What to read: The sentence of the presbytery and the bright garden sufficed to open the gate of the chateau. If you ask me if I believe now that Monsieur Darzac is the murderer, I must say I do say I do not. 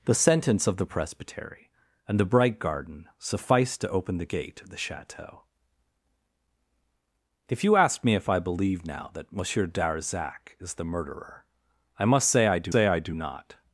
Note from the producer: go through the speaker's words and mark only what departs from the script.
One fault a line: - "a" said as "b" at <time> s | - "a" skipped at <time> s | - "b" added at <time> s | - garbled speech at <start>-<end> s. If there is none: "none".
none